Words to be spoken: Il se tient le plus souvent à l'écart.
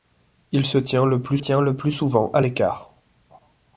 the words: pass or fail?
fail